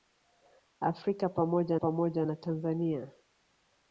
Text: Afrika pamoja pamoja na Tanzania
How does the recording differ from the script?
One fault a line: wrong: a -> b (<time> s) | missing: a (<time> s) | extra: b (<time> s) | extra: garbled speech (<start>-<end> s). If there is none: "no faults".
no faults